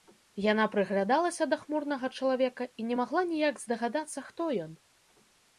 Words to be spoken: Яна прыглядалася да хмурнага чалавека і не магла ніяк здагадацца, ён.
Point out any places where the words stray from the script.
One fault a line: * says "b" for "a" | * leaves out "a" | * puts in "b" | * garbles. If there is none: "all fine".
* puts in "хто"